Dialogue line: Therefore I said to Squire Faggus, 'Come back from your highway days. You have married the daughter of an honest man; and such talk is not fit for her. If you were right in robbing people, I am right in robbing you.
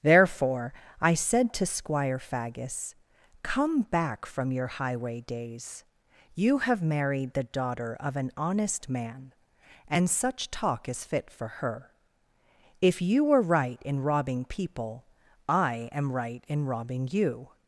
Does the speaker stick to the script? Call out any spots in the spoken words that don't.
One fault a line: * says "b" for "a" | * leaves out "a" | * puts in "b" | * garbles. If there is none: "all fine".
* leaves out "not"